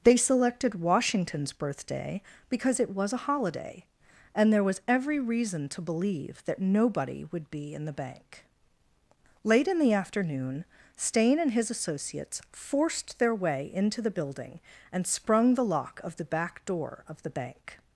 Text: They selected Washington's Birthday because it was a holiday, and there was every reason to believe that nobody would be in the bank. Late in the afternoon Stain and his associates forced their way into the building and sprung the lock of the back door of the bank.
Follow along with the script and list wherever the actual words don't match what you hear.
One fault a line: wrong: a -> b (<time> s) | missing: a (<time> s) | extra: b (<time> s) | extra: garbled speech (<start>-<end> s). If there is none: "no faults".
no faults